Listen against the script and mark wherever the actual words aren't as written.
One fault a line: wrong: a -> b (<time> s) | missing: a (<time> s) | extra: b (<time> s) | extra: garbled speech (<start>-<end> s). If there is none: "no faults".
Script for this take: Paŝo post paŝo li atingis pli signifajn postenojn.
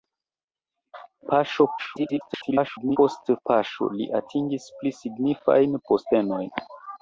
extra: garbled speech (1.8-3.0 s)